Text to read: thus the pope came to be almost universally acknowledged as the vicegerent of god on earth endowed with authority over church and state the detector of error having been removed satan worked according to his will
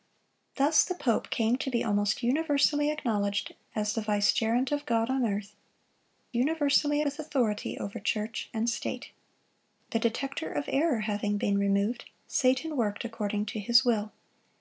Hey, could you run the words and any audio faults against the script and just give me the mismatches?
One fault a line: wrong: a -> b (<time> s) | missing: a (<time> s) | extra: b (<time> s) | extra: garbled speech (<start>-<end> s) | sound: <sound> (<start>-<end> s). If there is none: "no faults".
wrong: endowed -> universally (6.3 s)